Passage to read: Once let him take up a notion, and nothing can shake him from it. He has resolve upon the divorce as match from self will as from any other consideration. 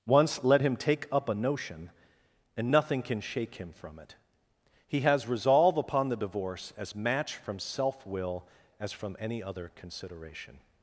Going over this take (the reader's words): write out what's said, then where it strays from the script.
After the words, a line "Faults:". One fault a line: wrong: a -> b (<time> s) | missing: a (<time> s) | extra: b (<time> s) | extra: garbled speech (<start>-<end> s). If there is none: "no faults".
Once let him take up a notion, and nothing can shake him from it. He has resolve upon the divorce as match from self will as from any other consideration.
Faults:
no faults